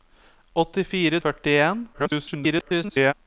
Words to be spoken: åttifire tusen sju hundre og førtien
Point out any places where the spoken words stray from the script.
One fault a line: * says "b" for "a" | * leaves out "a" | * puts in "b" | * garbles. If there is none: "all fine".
* leaves out "tusen sju hundre"
* garbles